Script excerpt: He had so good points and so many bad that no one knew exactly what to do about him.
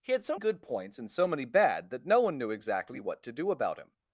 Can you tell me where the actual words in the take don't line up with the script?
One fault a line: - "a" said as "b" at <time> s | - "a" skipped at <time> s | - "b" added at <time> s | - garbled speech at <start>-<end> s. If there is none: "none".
none